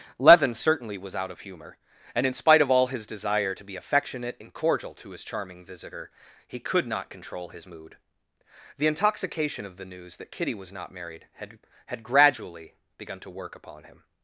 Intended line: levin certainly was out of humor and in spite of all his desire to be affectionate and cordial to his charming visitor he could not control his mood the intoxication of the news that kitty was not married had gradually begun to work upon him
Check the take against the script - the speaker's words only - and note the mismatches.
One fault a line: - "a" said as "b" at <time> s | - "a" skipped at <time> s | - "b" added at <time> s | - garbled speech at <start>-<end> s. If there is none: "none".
- "had" added at 11.9 s